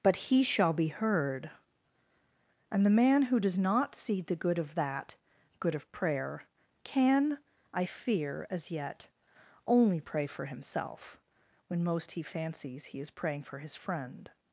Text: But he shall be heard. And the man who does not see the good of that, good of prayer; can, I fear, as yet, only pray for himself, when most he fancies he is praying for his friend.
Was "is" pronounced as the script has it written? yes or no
yes